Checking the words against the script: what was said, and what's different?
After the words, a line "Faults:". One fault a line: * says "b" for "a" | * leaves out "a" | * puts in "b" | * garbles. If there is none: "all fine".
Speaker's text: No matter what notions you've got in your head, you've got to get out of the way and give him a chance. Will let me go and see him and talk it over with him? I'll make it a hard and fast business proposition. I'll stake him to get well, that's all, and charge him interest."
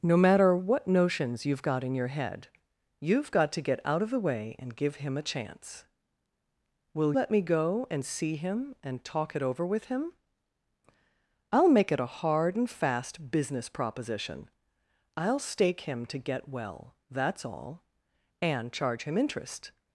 No matter what notions you've got in your head, you've got to get out of the way and give him a chance. Will let me go and see him and talk it over with him? I'll make it a hard and fast business proposition. I'll stake him to get well, that's all, and charge him interest."
Faults:
all fine